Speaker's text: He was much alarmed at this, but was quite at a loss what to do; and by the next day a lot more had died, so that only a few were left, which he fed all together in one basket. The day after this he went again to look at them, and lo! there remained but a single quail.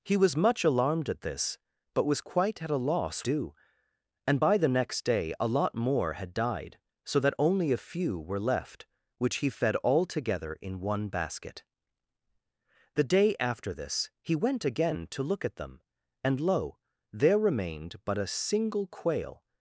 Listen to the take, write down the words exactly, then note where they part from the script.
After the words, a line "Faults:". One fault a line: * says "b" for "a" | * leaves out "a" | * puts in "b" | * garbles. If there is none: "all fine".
He was much alarmed at this, but was quite at a loss do; and by the next day a lot more had died, so that only a few were left, which he fed all together in one basket. The day after this he went again to look at them, and lo! there remained but a single quail.
Faults:
* leaves out "what to"